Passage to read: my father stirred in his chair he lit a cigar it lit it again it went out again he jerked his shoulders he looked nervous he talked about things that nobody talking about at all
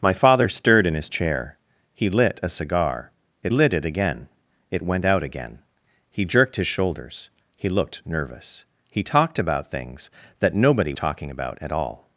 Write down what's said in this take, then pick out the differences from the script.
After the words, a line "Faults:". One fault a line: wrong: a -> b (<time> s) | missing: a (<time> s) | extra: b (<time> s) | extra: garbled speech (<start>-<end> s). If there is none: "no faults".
my father stirred in his chair he lit a cigar it lit it again it went out again he jerked his shoulders he looked nervous he talked about things that nobody talking about at all
Faults:
no faults